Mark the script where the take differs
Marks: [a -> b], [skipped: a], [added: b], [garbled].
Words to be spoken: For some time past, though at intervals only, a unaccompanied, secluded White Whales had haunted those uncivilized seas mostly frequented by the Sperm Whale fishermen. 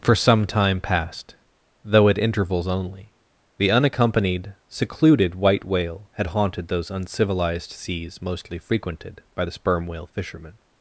For some time past, though at intervals only, [a -> the] unaccompanied, secluded White [Whales -> Whale] had haunted those uncivilized seas mostly frequented by the Sperm Whale fishermen.